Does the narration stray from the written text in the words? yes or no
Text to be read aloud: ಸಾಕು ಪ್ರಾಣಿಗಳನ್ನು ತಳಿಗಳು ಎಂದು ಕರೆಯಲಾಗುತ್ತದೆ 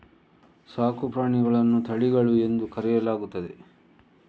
no